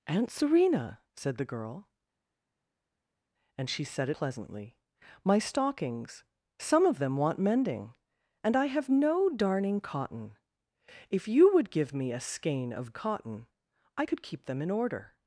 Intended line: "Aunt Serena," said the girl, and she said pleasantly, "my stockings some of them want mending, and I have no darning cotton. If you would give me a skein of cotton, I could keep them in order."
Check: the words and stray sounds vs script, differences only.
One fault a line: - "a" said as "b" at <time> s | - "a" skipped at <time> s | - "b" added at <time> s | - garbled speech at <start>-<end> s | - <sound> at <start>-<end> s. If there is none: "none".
none